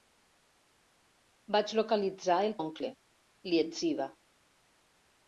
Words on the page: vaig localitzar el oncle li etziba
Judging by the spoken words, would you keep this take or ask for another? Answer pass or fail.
pass